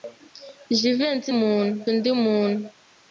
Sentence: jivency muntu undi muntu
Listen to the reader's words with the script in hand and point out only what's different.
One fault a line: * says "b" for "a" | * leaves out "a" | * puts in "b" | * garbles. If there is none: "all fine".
all fine